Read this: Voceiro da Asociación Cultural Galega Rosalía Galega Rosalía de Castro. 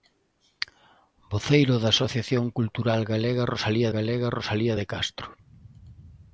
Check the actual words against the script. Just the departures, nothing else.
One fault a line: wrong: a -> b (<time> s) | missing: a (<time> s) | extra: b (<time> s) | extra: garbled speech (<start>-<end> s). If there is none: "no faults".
no faults